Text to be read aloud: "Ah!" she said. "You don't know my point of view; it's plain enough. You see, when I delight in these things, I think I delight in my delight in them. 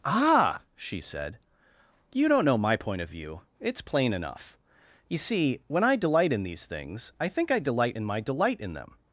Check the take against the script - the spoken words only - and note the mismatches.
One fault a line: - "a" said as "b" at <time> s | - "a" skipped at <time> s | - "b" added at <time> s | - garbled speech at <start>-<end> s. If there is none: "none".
none